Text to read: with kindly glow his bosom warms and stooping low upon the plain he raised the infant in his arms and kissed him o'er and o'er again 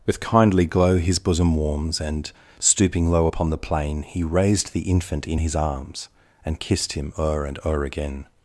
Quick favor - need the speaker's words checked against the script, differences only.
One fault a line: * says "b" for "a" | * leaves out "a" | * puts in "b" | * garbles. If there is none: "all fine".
all fine